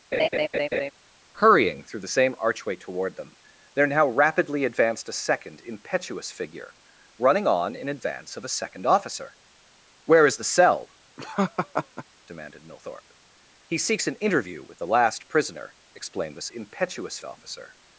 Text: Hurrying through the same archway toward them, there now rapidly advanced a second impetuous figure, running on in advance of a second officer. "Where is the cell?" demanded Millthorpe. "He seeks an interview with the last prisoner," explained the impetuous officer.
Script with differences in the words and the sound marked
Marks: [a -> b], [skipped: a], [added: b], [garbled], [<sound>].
[laugh] Hurrying through the same archway toward them, there now rapidly advanced a second impetuous figure, running on in advance of a second officer. "Where is the cell?" [laugh] demanded Millthorpe. "He seeks an interview with the last prisoner," explained the impetuous officer.